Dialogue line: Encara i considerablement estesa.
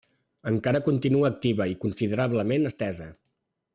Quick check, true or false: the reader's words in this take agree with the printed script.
false